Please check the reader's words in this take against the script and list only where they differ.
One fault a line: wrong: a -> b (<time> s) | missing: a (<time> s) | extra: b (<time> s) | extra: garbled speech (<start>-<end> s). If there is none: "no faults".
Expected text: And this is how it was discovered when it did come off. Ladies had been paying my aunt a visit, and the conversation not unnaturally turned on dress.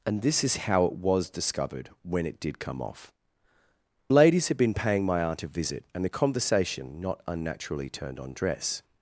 no faults